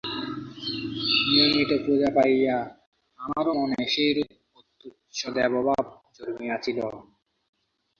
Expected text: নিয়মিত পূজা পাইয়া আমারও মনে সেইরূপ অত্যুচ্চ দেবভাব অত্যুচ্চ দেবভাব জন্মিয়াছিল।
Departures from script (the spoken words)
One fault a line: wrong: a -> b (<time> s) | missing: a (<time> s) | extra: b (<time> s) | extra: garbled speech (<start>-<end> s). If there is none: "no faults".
missing: অত্যুচ্চ দেবভাব (5.8 s)